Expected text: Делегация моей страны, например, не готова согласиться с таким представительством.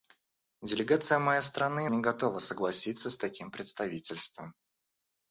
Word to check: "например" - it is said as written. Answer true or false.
false